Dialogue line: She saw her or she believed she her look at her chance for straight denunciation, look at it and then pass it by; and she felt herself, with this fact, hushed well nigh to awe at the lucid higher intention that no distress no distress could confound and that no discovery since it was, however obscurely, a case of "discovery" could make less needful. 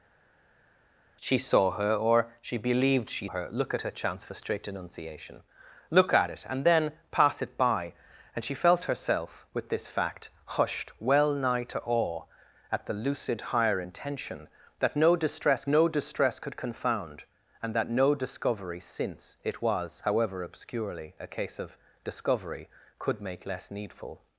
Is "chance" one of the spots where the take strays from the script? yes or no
no